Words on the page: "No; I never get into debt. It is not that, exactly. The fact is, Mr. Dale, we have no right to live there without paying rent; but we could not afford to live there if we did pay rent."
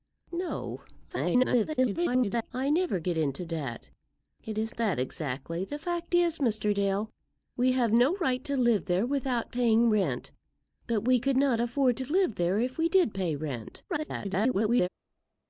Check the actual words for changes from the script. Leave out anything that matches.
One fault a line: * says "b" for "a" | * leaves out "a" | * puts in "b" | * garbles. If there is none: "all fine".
* garbles
* leaves out "not"
* garbles